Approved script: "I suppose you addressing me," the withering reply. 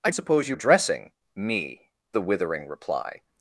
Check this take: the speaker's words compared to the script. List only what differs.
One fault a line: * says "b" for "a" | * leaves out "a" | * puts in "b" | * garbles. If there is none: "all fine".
all fine